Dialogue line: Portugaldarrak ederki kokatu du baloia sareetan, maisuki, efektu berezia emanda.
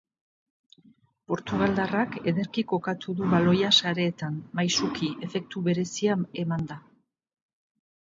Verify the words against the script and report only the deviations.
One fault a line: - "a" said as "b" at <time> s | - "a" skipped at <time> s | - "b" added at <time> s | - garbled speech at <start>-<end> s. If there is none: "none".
none